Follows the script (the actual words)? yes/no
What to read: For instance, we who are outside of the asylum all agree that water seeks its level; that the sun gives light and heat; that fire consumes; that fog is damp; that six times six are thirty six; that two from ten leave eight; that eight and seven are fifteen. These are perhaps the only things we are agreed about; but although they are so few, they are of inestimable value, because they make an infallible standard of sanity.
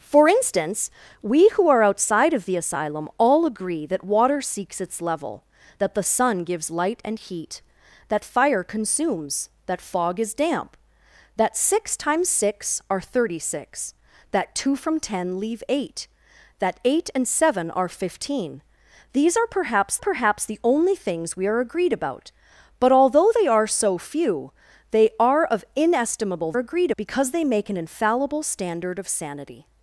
no